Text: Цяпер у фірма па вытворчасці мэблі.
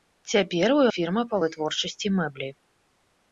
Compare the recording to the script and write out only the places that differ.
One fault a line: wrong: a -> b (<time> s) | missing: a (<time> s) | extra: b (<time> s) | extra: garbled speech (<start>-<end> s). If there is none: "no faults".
no faults